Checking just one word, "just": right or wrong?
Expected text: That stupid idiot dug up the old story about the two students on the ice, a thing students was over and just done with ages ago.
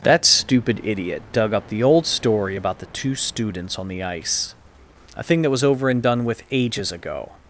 wrong